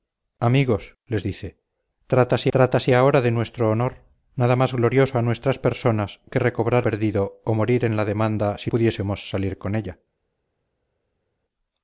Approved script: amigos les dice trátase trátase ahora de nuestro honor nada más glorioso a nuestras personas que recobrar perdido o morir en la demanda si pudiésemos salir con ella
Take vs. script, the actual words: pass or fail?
pass